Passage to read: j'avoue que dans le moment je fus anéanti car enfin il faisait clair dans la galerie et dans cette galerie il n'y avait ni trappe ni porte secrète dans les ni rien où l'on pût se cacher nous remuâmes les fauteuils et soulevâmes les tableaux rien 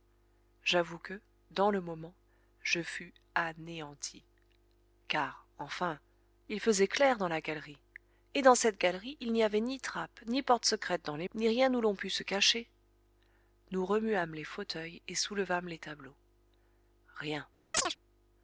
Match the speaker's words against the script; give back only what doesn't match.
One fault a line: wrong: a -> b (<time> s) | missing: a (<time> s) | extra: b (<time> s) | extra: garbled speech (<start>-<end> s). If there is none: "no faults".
no faults